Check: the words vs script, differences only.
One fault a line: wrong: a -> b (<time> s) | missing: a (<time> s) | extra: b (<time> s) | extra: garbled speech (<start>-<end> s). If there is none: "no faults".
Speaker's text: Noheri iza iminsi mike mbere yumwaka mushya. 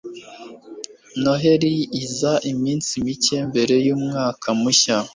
no faults